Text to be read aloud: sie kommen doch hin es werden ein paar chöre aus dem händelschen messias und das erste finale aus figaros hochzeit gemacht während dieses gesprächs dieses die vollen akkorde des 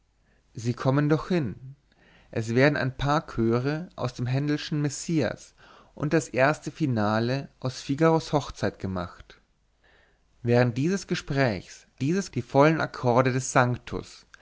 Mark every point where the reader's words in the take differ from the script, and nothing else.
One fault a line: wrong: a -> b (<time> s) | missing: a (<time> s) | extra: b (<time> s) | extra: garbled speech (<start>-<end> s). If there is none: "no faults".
no faults